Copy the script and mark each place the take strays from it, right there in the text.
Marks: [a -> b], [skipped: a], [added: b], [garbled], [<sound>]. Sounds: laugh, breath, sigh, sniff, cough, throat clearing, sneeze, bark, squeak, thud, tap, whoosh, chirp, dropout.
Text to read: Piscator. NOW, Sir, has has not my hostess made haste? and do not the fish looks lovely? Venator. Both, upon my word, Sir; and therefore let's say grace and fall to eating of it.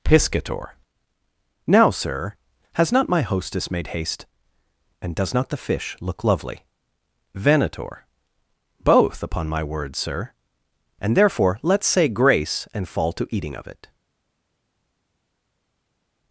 Piscator. NOW, Sir, has [skipped: has] not my hostess made haste? and [do -> does] not the fish [looks -> look] lovely? Venator. Both, upon my word, Sir; and therefore let's say grace and fall to eating of it.